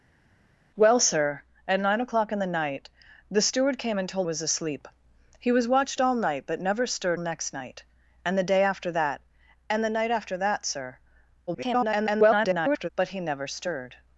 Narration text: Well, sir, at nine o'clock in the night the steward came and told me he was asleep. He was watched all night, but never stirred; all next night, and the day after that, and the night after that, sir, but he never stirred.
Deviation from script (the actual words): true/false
true